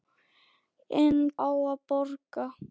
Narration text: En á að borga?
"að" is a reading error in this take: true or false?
false